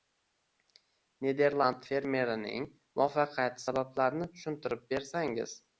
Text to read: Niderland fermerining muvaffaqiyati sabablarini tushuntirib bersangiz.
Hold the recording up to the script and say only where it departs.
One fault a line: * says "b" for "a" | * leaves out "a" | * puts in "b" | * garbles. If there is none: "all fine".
all fine